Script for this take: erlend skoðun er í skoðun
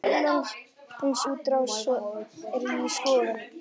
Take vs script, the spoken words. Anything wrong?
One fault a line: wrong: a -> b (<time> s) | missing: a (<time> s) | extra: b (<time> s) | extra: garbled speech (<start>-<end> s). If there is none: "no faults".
wrong: skoðun -> útrás (1.3 s)